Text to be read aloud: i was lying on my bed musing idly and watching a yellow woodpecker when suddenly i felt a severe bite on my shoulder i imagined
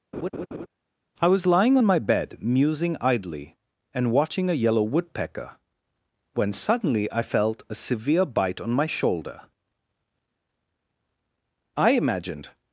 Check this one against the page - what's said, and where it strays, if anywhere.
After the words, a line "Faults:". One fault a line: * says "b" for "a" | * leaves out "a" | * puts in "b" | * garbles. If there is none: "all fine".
i was lying on my bed musing idly and watching a yellow woodpecker when suddenly i felt a severe bite on my shoulder i imagined
Faults:
all fine